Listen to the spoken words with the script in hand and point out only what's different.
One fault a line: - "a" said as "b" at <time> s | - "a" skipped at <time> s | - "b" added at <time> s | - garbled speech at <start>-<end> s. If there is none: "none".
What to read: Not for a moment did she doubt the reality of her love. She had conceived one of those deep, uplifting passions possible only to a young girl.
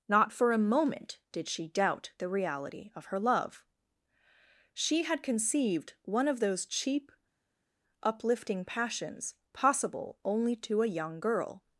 - "deep" said as "cheap" at 6.7 s